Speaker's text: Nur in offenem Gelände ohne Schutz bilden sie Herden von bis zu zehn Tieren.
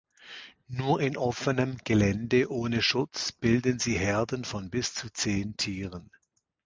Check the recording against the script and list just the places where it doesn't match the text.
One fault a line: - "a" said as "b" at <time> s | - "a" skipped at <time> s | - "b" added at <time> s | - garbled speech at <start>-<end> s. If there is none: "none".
none